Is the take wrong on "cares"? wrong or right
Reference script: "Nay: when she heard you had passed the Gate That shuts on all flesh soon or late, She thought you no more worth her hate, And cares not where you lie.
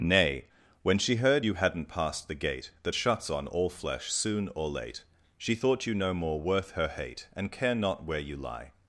wrong